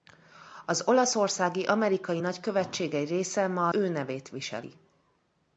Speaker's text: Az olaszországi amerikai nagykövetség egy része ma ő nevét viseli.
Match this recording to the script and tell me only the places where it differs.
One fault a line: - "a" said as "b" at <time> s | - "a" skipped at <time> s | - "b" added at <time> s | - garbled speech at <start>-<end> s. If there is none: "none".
none